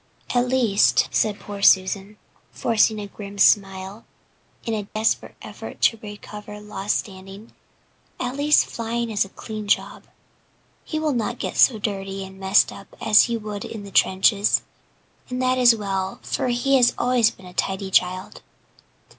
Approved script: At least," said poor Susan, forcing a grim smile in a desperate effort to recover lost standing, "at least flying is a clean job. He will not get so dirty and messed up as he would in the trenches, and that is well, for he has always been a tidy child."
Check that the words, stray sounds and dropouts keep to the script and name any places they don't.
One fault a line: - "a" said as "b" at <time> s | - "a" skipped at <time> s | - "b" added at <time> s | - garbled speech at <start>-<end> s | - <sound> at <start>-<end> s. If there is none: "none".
- dropout at 4.9-5.0 s